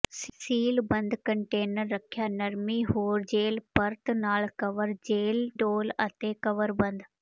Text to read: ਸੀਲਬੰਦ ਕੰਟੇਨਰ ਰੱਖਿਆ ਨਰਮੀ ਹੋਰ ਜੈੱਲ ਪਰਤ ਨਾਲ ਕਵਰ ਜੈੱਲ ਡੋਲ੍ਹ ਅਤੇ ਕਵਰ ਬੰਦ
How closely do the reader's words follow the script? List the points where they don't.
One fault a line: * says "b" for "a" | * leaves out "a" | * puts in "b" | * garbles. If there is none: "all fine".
all fine